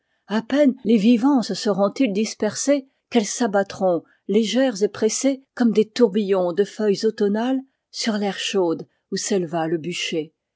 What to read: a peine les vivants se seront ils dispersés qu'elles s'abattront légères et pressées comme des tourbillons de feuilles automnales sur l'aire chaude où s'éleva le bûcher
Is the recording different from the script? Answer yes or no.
no